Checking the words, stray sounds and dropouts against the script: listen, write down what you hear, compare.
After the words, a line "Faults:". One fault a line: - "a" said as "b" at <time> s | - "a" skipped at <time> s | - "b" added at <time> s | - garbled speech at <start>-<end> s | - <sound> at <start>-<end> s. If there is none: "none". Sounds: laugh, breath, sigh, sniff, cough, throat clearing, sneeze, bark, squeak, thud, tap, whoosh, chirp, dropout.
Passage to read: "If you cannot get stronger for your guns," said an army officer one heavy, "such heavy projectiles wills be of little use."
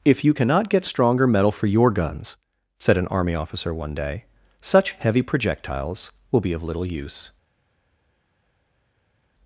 "If you cannot get stronger metal for your guns," said an army officer one day, "such heavy projectiles will be of little use."
Faults:
- "metal" added at 1.3 s
- "heavy" said as "day" at 3.9 s
- "wills" said as "will" at 6.3 s